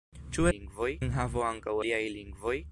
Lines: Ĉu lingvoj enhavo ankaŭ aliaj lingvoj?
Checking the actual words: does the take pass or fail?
pass